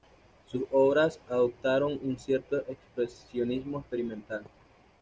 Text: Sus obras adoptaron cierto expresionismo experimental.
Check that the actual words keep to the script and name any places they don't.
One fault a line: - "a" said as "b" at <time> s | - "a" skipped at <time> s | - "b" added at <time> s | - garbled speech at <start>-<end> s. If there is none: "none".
- "un" added at 2.0 s